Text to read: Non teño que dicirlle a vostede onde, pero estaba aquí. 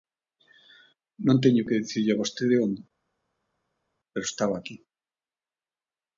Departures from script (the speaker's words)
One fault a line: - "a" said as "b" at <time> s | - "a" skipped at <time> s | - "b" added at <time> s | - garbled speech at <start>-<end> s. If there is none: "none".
none